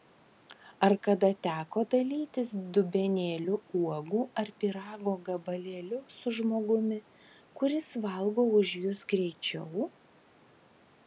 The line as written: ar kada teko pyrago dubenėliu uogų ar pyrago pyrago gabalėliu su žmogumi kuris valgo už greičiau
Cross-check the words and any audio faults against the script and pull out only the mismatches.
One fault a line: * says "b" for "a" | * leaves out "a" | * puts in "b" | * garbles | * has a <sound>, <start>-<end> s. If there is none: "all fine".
* says "dalytis" for "pyrago"
* leaves out "pyrago"
* puts in "jus"